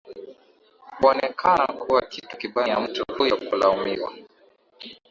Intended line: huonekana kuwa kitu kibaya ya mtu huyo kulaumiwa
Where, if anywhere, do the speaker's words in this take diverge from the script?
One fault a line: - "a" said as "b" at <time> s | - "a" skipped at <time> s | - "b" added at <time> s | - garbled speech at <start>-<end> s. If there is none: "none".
none